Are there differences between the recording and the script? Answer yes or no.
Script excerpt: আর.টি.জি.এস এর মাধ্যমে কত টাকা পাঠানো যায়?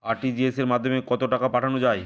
no